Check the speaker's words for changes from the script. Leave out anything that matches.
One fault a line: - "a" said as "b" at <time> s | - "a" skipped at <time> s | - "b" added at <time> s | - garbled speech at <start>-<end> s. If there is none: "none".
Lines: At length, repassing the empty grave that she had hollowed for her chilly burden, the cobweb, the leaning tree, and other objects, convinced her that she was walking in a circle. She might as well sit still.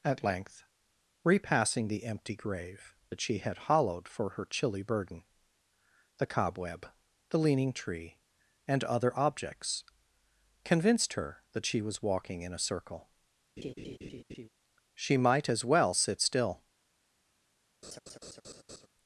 none